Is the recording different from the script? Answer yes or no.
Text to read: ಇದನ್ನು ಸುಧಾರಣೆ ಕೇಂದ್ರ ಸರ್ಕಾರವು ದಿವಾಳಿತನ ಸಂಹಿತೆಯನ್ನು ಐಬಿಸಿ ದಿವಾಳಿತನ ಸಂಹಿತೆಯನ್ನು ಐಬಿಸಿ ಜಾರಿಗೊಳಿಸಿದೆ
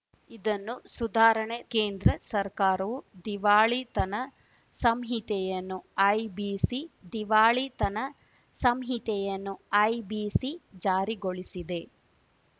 no